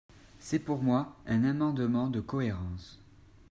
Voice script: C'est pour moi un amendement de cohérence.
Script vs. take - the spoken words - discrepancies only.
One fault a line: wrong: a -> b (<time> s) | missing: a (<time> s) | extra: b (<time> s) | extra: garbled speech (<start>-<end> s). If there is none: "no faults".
no faults